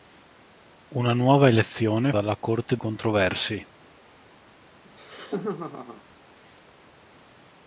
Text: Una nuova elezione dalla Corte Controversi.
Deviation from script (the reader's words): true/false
false